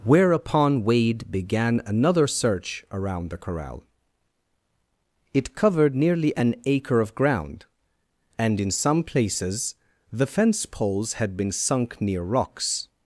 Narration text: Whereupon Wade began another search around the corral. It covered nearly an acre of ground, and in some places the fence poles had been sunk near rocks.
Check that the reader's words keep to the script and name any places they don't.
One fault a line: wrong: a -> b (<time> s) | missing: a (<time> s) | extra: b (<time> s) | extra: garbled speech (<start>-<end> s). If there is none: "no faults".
no faults